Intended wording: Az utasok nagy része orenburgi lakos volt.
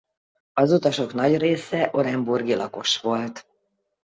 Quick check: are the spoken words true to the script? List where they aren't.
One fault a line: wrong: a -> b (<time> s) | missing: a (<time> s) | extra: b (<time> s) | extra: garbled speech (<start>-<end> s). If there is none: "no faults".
no faults